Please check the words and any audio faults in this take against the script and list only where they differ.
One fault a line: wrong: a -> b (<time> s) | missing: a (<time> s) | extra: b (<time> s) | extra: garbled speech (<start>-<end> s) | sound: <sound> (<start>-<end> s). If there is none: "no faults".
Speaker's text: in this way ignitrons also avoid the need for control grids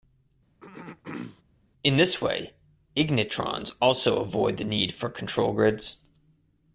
sound: throat clearing (0.6-1.4 s)